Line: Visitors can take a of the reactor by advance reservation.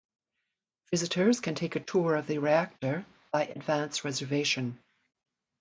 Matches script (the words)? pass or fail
fail